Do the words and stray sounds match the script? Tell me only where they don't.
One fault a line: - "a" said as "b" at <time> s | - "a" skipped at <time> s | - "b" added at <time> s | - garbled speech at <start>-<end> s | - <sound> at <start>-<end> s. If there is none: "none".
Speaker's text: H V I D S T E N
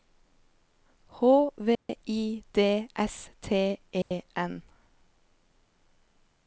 - dropout at 1.7-1.9 s
- dropout at 4.0-4.1 s